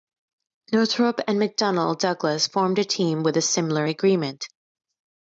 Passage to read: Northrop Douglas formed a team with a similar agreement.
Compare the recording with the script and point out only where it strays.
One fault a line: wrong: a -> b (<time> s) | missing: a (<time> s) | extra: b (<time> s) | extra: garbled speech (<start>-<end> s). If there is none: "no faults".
extra: and McDonnell (1.3 s)